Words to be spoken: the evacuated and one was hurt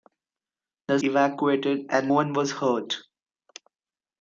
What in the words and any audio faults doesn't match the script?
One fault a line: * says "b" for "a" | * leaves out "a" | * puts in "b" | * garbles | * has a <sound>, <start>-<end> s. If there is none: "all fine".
all fine